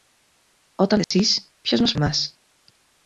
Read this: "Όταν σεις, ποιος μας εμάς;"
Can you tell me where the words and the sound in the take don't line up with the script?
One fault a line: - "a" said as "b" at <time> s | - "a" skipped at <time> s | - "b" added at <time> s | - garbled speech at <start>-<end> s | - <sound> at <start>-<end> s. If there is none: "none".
- dropout at 1.0-1.1 s